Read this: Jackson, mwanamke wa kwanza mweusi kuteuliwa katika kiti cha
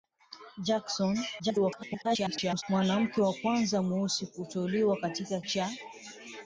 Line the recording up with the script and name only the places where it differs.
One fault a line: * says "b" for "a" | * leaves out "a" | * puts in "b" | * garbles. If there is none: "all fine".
* garbles
* leaves out "kiti"